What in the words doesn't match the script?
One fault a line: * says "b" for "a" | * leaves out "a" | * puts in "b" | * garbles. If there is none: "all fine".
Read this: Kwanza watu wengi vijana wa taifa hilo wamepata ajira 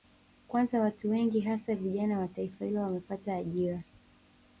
* puts in "hasa"